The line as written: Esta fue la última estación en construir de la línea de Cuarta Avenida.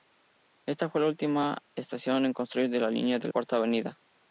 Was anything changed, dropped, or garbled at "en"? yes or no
no